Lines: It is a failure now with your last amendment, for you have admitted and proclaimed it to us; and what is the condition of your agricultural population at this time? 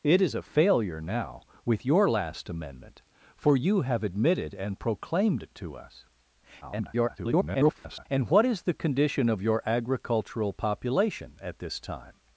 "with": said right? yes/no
yes